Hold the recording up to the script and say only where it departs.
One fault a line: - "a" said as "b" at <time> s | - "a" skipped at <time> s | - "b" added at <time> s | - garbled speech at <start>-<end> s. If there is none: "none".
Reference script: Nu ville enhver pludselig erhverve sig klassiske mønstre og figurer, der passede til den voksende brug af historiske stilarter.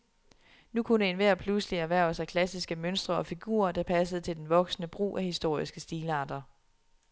- "ville" said as "kunne" at 0.8 s